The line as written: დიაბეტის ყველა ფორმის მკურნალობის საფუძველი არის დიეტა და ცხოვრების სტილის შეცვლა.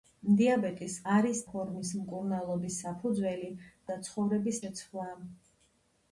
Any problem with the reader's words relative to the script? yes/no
yes